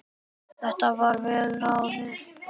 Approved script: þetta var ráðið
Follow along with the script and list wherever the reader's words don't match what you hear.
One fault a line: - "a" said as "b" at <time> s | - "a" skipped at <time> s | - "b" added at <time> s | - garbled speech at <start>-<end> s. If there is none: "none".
- "vel" added at 1.3 s